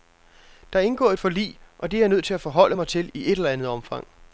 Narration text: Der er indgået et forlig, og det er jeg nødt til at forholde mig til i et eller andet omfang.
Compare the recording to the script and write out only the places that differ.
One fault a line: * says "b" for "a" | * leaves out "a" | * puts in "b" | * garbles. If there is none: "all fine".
all fine